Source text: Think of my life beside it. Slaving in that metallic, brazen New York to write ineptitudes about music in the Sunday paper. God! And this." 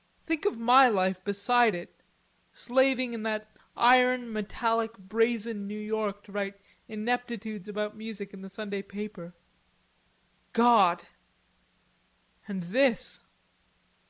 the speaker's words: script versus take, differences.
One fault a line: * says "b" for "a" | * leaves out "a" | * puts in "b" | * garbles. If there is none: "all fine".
* puts in "iron"